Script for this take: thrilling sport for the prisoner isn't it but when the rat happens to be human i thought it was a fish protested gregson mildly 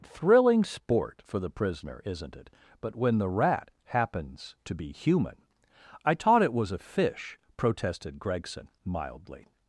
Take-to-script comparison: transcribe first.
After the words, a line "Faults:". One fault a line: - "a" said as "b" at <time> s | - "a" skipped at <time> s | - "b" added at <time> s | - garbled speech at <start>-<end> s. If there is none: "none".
thrilling sport for the prisoner isn't it but when the rat happens to be human i taught it was a fish protested gregson mildly
Faults:
- "thought" said as "taught" at 6.1 s